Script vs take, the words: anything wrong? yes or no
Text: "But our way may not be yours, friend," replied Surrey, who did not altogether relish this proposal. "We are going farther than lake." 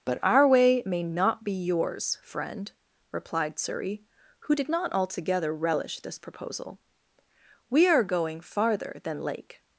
no